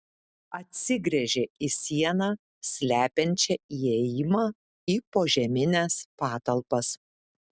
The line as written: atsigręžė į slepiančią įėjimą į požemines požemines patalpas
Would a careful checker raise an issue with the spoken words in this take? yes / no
yes